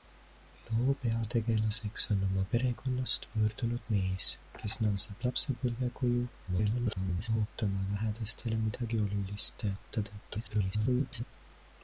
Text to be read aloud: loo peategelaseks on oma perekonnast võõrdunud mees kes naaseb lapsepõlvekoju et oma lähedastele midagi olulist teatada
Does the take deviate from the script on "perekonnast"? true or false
false